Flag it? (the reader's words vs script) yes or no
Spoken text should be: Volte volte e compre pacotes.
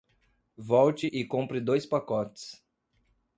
yes